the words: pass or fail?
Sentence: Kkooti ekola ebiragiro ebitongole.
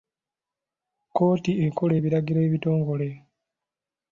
pass